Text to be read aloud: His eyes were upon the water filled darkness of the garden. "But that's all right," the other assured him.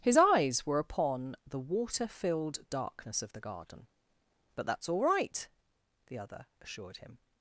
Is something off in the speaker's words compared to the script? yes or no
no